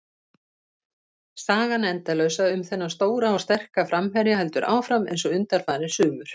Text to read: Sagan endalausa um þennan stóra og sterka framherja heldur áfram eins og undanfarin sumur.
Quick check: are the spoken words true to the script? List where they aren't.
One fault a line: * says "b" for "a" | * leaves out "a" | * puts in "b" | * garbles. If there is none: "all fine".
all fine